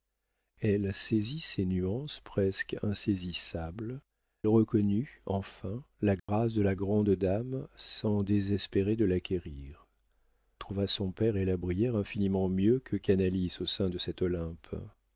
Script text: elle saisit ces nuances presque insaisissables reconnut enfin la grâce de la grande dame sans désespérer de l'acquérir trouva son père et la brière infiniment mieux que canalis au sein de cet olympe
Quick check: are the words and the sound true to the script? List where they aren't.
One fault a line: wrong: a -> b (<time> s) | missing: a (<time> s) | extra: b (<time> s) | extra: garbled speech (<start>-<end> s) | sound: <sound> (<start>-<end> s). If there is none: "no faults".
sound: dropout (6.2-6.3 s)